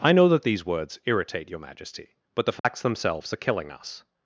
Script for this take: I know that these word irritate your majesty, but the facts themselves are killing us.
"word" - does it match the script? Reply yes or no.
no